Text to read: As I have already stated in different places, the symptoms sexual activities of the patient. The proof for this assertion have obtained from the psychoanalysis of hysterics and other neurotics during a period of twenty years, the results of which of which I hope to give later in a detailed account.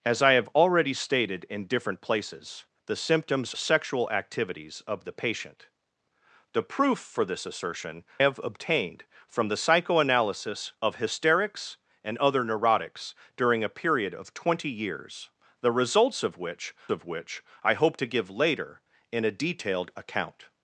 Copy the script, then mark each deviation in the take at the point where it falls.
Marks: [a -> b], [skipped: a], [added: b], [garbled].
As I have already stated in different places, the symptoms sexual activities of the patient. The proof for this assertion have obtained from the psychoanalysis of hysterics and other neurotics during a period of twenty years, the results of which of which I hope to give later in a detailed account.